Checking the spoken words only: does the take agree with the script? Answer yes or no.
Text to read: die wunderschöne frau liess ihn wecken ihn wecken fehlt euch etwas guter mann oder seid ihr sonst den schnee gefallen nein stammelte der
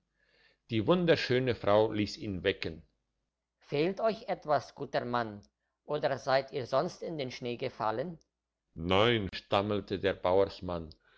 no